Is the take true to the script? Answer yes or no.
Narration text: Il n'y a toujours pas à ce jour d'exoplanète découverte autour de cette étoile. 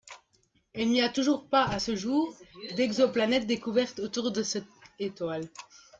yes